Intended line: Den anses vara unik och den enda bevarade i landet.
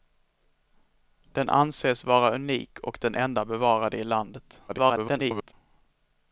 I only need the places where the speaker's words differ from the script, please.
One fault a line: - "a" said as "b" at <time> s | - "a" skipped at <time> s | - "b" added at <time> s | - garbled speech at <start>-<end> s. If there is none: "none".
- garbled speech at 4.7-5.5 s